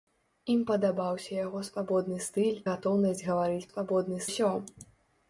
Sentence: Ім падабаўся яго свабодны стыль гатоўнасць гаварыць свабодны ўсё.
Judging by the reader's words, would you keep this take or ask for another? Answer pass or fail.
pass